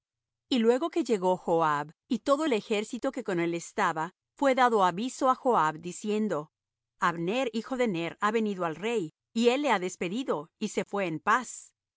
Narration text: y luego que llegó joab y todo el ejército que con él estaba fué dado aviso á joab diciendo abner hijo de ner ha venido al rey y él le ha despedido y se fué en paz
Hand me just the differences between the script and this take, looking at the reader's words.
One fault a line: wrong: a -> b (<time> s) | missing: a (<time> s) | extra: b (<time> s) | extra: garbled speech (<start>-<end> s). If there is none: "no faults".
no faults